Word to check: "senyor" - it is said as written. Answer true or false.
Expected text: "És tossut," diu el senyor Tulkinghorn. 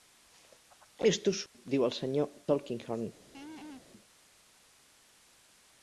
true